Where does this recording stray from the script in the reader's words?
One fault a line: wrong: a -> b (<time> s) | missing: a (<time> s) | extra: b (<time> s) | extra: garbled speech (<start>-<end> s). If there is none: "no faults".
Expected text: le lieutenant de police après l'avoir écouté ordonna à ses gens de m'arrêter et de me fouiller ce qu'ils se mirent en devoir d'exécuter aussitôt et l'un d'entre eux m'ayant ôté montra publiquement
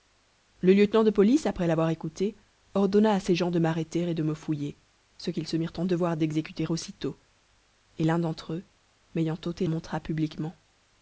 no faults